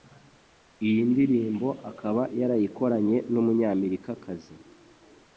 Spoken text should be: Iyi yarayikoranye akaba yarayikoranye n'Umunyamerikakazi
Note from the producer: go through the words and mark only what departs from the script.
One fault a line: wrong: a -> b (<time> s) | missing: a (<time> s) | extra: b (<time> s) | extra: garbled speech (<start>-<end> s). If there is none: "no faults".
wrong: yarayikoranye -> ndirimbo (1.1 s)